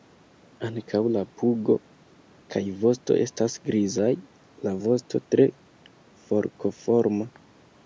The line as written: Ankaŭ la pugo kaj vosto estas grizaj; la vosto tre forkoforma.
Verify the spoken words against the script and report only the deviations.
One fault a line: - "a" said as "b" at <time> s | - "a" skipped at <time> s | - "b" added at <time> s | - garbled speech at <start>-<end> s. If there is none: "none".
none